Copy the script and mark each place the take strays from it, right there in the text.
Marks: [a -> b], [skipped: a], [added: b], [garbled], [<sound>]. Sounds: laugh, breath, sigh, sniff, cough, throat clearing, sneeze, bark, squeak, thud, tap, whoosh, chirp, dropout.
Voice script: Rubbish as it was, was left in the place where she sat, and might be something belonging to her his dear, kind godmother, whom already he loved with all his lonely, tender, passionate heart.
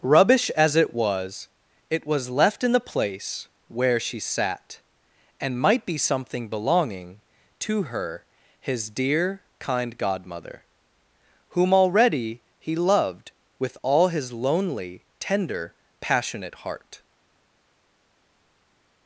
Rubbish as it was, [added: it] was left in the place where she sat, and might be something belonging to her his dear, kind godmother, whom already he loved with all his lonely, tender, passionate heart.